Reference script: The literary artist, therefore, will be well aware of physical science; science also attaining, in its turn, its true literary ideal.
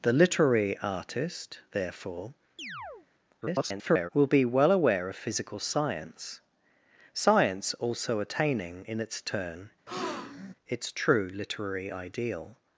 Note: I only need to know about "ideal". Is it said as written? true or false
true